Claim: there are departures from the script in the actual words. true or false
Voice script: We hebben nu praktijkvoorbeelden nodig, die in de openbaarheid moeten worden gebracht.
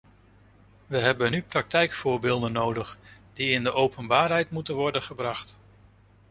false